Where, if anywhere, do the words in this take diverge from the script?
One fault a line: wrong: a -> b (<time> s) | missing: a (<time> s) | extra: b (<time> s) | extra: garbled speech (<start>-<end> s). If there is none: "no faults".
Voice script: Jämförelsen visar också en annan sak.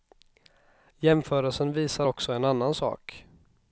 no faults